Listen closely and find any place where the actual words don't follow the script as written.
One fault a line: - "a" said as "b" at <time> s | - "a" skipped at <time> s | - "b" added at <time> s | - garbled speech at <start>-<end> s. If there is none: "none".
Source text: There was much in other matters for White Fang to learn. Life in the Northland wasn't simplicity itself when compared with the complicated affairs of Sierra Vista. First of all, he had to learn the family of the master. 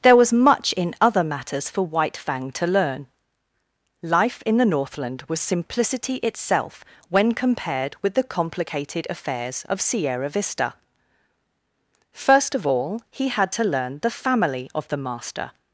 - "wasn't" said as "was" at 5.3 s